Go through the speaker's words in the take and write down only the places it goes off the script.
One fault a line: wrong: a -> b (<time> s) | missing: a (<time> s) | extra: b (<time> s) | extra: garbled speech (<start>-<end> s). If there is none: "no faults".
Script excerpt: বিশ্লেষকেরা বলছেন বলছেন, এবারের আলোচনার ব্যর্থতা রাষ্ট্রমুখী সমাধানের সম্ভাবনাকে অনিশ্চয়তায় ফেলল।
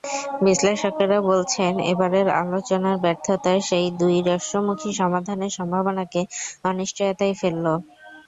missing: বলছেন (1.7 s)
extra: সেই দুই (3.7 s)